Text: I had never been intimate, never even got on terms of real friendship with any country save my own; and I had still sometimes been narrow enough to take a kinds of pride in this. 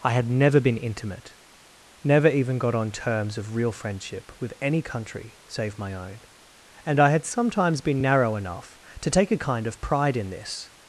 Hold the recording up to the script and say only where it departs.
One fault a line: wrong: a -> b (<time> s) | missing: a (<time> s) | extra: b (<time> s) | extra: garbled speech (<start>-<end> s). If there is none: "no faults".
missing: still (7.2 s)
wrong: kinds -> kind (9.4 s)